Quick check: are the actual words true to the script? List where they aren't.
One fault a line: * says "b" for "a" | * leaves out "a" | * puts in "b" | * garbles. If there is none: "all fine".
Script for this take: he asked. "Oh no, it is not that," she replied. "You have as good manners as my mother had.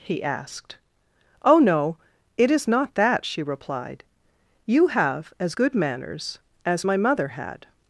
all fine